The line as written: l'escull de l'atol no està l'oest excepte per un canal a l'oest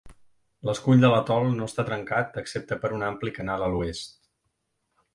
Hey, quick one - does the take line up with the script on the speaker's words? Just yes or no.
no